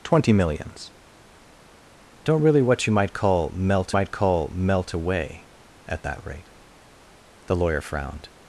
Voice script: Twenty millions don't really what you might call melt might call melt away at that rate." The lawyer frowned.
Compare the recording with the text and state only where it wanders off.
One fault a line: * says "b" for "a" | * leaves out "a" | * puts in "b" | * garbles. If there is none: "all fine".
all fine